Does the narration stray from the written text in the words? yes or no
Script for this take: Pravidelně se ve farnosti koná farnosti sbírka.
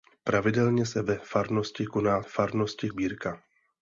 no